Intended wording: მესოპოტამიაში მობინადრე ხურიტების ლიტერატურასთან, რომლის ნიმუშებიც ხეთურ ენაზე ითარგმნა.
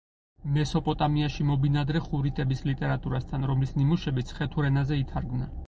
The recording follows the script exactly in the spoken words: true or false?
true